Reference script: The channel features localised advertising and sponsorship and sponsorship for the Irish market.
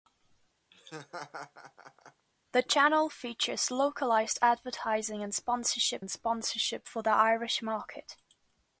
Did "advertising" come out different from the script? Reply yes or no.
no